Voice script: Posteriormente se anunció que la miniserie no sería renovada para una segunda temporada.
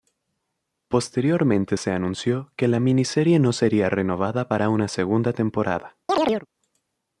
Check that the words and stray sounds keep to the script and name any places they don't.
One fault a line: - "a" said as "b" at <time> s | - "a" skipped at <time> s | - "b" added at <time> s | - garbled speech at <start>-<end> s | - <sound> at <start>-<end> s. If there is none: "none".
- chirp at 6.1-6.5 s